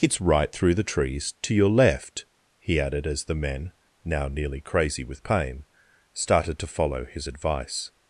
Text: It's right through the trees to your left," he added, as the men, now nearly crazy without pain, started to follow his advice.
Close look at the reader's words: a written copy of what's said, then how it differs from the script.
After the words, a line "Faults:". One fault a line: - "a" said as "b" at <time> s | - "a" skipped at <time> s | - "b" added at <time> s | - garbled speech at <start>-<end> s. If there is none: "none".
It's right through the trees to your left," he added, as the men, now nearly crazy with pain, started to follow his advice.
Faults:
- "without" said as "with" at 5.0 s